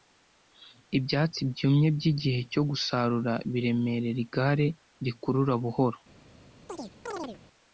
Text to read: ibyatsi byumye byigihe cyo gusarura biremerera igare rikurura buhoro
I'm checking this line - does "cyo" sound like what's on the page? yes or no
yes